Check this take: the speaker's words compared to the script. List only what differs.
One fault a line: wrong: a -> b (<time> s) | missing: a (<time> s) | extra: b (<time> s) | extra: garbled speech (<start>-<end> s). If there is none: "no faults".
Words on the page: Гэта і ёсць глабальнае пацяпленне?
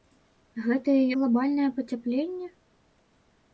missing: ёсць (1.0 s)